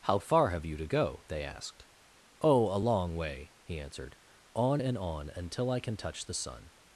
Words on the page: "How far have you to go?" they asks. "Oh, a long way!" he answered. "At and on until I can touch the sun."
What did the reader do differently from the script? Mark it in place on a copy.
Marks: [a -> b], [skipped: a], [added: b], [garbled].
"How far have you to go?" they [asks. -> asked] "Oh, a long way!" he answered. ["At -> On] and on until I can touch the sun."